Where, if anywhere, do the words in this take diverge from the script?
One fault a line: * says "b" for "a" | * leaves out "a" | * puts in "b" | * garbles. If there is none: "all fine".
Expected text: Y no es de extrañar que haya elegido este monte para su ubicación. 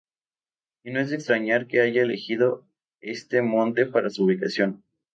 all fine